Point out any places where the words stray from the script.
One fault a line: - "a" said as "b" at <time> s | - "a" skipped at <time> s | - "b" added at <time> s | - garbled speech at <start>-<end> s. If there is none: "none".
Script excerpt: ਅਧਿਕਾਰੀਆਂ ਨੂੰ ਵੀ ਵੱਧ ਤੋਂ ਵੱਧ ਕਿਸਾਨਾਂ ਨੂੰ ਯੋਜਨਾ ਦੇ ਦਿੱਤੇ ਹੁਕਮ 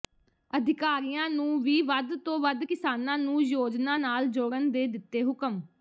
- "ਨਾਲ ਜੋੜਨ" added at 3.9 s